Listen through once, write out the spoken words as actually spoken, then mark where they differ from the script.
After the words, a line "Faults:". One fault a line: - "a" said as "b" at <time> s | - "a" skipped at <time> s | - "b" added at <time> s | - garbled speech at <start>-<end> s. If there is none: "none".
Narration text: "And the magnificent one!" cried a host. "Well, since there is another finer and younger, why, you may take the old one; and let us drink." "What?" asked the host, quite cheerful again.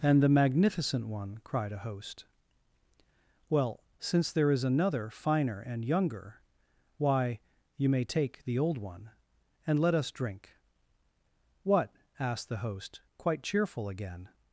"And the magnificent one!" cried a host. "Well, since there is another finer and younger, why, you may take the old one; and let us drink." "What?" asked the host, quite cheerful again.
Faults:
none